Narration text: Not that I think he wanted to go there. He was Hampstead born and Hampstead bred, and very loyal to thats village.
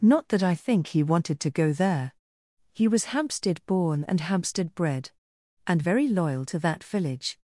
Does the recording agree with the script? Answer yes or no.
no